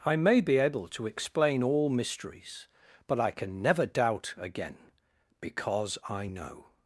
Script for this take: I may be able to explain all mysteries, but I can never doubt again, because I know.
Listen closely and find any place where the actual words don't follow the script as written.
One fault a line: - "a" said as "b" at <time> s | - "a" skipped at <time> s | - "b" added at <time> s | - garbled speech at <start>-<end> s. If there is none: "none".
none